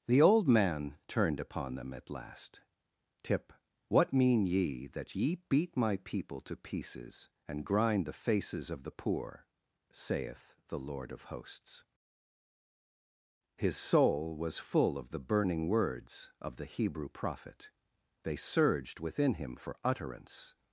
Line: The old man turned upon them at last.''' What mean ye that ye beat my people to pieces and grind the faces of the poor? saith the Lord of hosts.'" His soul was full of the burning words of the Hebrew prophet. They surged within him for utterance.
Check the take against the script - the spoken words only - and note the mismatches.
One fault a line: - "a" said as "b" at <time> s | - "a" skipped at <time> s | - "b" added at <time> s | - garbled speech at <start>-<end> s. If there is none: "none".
- "tip" added at 3.2 s